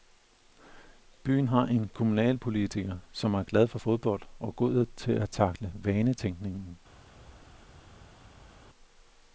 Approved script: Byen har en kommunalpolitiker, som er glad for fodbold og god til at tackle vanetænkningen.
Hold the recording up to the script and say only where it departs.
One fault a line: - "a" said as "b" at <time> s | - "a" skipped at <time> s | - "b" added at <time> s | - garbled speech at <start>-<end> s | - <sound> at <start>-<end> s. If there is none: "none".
none